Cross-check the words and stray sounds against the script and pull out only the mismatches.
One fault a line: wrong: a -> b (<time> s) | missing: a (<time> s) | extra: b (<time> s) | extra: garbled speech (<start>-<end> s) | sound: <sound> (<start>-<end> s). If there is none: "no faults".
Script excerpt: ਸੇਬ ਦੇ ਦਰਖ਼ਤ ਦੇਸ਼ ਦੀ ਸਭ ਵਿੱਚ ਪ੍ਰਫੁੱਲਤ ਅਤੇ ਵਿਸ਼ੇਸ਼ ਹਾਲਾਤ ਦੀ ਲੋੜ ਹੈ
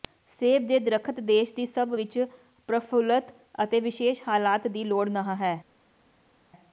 extra: ਨਹ (5.1 s)